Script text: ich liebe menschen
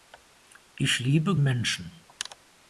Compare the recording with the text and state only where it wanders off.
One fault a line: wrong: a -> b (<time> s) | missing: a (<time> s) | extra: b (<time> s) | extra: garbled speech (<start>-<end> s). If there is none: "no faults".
no faults